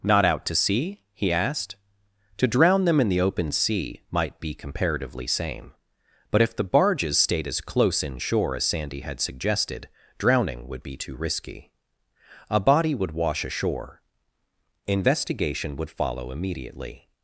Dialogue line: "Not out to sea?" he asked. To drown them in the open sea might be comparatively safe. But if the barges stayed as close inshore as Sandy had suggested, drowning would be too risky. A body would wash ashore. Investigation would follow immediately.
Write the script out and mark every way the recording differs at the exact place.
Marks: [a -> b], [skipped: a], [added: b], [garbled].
"Not out to sea?" he asked. To drown them in the open sea might be comparatively [safe. -> same] But if the barges stayed as close inshore as Sandy had suggested, drowning would be too risky. A body would wash ashore. Investigation would follow immediately.